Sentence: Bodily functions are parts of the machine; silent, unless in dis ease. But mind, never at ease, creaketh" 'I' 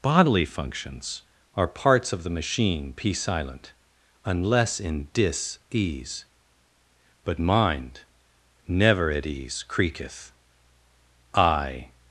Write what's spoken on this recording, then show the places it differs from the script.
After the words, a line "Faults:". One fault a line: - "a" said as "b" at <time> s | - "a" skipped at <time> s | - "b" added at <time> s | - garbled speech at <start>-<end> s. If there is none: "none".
Bodily functions are parts of the machine; p silent, unless in dis ease. But mind, never at ease, creaketh" 'I'
Faults:
- "p" added at 2.9 s